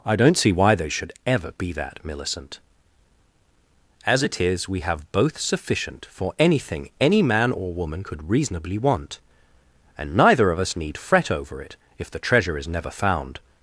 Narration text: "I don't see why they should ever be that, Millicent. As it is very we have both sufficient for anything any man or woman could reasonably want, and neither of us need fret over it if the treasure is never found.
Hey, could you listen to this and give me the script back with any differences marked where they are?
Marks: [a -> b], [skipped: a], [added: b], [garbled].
"I don't see why they should ever be that, Millicent. As it is [skipped: very] we have both sufficient for anything any man or woman could reasonably want, and neither of us need fret over it if the treasure is never found.